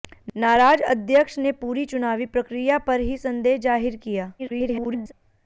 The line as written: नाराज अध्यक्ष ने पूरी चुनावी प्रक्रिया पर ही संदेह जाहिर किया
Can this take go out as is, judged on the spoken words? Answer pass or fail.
fail